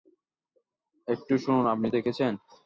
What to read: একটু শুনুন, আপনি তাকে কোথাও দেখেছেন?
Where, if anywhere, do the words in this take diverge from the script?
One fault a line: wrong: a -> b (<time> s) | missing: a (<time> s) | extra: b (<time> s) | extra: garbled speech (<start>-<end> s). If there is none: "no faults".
missing: তাকে কোথাও (1.9 s)